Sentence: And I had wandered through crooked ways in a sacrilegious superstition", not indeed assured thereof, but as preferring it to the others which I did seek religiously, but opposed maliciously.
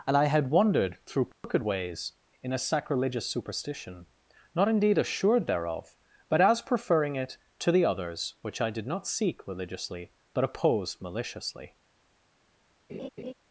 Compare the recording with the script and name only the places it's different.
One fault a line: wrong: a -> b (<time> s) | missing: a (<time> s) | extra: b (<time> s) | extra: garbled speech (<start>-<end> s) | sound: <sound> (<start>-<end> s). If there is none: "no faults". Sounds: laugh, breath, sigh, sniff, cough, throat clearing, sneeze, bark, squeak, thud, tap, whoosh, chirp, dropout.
sound: dropout (1.3-1.4 s)
extra: not (8.9 s)
sound: laugh (12.9-13.3 s)